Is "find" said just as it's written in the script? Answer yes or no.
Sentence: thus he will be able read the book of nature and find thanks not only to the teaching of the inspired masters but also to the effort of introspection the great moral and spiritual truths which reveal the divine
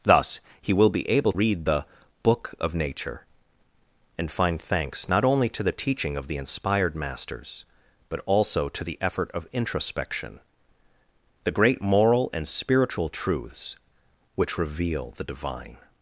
yes